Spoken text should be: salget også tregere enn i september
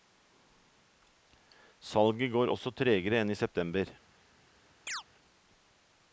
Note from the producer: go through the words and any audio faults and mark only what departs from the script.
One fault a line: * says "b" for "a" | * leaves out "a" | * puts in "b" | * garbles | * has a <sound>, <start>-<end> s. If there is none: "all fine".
* puts in "går"
* has a chirp, 4.9-5.0 s